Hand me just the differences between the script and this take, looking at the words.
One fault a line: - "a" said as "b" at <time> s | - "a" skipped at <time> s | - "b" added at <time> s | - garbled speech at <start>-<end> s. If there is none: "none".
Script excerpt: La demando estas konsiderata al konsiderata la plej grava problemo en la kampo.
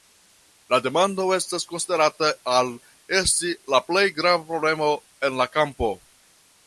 - "konsiderata" said as "esti" at 3.2 s